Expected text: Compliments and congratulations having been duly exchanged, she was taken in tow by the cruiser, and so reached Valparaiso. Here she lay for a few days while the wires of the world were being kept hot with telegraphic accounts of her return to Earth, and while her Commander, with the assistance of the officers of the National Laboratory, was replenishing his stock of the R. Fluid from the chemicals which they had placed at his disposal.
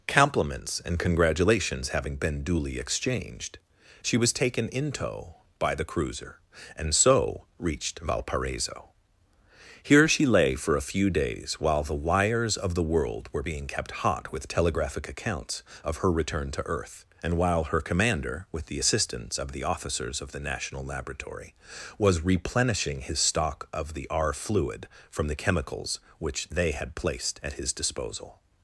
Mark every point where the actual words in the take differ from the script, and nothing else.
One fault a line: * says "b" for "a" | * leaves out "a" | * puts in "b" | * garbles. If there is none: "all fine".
all fine